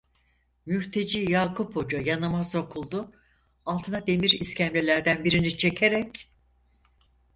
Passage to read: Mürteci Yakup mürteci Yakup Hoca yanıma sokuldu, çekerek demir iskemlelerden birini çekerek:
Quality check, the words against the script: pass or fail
fail